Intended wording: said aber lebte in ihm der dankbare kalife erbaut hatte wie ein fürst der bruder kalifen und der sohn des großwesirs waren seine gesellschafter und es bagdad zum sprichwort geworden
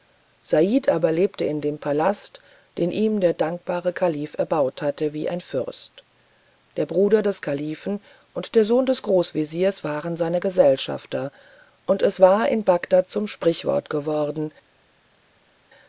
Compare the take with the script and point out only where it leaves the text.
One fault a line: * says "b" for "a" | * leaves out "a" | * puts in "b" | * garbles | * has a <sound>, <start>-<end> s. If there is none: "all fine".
* puts in "dem palast den"
* puts in "des"
* puts in "war in"